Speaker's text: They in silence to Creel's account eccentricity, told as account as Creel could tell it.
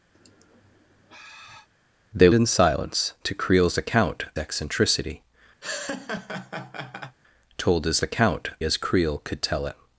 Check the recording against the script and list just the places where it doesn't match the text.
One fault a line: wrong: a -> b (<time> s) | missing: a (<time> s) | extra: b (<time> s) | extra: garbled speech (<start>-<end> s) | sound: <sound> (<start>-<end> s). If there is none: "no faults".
sound: sigh (0.1-1.7 s)
sound: laugh (5.6-7.2 s)